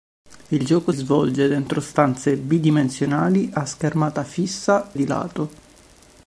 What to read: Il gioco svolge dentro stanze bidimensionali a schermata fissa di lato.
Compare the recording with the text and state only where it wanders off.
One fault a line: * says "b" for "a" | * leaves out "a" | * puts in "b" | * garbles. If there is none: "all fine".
all fine